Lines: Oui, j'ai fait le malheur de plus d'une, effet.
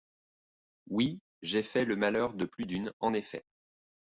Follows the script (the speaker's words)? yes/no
no